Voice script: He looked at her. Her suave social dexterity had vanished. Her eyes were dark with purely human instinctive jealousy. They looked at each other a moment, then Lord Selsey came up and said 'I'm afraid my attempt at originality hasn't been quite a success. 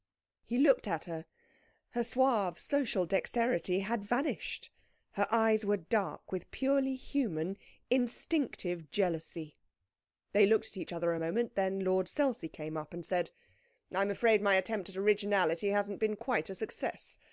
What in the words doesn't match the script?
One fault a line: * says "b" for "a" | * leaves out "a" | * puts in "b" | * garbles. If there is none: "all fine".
all fine